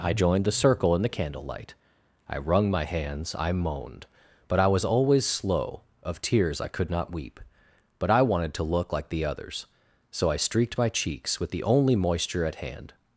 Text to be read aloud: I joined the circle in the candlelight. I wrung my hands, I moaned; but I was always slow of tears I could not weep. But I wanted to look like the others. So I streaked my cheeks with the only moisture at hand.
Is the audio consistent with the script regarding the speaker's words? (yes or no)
yes